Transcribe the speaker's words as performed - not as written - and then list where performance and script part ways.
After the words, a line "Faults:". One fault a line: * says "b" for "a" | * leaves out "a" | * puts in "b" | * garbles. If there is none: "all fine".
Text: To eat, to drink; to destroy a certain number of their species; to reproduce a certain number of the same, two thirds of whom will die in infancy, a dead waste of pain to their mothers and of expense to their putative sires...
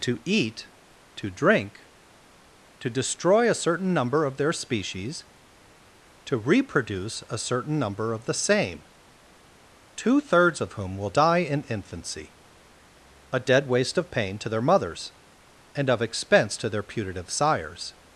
To eat, to drink; to destroy a certain number of their species; to reproduce a certain number of the same, two thirds of whom will die in infancy, a dead waste of pain to their mothers and of expense to their putative sires...
Faults:
all fine